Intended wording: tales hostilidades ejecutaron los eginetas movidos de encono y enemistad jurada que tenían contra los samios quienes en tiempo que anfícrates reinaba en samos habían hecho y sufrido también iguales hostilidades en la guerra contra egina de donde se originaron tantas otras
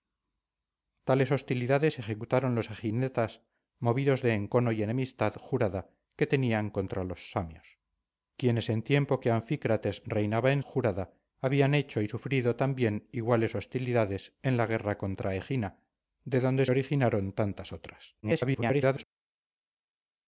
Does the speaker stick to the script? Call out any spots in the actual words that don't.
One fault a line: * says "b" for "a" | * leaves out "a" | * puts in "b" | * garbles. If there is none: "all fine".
* says "jurada" for "samos"
* leaves out "se"
* garbles